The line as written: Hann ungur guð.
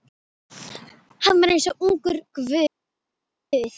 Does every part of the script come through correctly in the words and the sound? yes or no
no